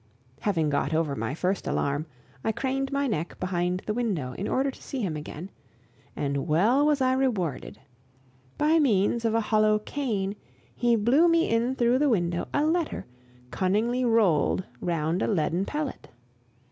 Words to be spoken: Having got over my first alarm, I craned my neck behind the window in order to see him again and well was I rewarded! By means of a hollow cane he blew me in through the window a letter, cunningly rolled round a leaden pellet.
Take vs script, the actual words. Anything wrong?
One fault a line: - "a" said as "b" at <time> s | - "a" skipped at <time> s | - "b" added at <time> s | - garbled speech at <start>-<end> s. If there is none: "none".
none